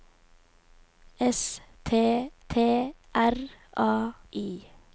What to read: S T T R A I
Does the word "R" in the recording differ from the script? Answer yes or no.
no